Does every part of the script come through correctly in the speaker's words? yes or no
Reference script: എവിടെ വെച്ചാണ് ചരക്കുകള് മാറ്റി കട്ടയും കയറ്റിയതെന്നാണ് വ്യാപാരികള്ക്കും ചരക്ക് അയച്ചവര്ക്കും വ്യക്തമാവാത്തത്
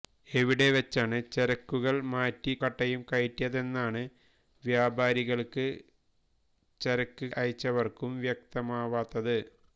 yes